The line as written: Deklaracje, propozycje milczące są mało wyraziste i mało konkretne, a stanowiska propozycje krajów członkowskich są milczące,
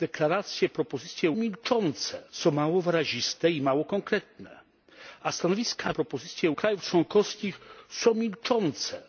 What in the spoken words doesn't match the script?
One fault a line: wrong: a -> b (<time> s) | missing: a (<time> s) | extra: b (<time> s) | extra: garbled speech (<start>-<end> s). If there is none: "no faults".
no faults